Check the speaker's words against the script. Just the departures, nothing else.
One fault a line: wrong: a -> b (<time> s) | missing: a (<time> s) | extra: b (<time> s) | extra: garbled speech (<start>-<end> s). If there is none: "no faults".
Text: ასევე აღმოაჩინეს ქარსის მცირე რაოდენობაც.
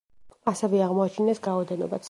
missing: ქარსის მცირე (1.4 s)